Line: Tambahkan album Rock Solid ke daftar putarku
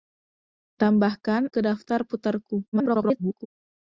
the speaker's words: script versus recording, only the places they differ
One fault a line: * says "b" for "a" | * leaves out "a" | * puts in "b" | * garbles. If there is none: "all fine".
* leaves out "album Rock Solid"
* garbles